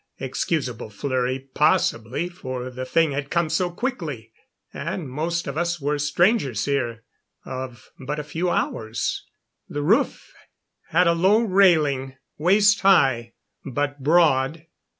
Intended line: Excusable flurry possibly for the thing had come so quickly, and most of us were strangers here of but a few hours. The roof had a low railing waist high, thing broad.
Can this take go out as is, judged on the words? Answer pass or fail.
fail